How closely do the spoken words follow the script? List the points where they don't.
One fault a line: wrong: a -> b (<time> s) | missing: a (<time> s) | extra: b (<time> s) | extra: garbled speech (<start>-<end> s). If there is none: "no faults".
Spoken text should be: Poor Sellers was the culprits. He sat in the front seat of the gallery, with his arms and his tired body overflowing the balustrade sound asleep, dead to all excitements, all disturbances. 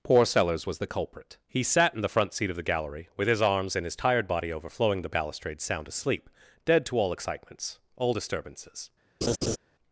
wrong: culprits -> culprit (0.9 s)